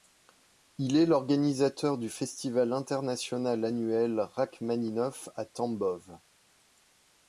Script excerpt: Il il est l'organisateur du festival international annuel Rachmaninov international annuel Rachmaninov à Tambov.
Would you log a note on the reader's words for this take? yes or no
yes